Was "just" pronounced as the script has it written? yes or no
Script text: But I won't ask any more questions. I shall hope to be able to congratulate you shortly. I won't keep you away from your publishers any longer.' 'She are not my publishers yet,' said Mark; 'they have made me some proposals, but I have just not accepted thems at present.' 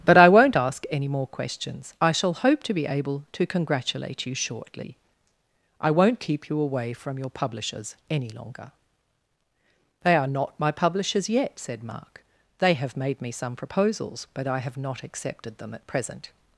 no